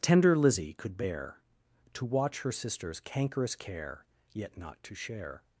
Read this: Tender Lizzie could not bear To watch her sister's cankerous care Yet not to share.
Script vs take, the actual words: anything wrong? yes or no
yes